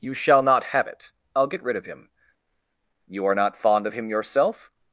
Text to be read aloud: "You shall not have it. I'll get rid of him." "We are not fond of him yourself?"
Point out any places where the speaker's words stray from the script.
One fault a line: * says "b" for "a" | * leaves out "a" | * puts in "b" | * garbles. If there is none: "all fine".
* says "You" for "We"